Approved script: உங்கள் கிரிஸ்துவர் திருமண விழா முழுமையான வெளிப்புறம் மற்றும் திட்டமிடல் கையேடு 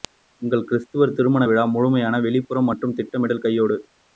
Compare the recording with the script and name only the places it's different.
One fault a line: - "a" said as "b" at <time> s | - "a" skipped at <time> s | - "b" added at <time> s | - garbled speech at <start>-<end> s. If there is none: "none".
none